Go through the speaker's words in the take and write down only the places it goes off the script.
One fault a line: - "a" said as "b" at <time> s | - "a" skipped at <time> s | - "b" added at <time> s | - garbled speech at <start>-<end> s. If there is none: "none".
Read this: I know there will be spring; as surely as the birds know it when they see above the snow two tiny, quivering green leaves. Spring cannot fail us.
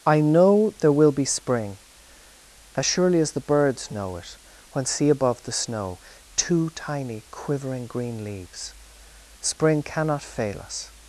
- "they" skipped at 4.9 s